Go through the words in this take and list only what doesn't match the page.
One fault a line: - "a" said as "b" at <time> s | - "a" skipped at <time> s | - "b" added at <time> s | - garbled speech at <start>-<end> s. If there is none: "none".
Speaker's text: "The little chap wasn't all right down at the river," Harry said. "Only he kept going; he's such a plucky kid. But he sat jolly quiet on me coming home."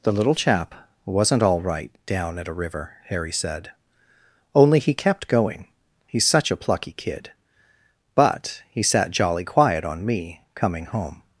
- "the" said as "a" at 2.5 s